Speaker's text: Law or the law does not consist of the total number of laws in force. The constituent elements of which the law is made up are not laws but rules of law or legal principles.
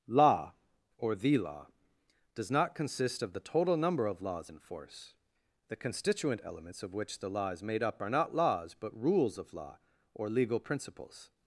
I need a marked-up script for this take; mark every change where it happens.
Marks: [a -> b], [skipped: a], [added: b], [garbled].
Law or the law does not consist of the total number of laws in force. The constituent elements of which the law is made up are not laws but rules of law or legal principles.